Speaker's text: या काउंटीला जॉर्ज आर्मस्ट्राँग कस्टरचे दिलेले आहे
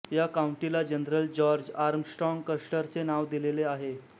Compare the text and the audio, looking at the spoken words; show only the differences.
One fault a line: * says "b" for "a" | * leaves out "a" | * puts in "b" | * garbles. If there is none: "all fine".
* puts in "जनरल"
* puts in "नाव"